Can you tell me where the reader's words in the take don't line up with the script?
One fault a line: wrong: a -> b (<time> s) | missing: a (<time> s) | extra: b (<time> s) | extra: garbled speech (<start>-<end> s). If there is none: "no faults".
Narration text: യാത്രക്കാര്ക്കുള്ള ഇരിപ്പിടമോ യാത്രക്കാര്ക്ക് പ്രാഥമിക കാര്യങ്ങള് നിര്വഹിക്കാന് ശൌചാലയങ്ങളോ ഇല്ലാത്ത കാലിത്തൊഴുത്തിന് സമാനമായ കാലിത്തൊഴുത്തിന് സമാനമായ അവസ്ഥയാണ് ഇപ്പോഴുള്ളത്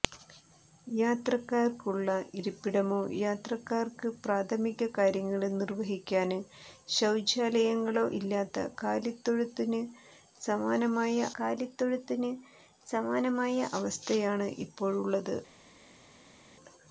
no faults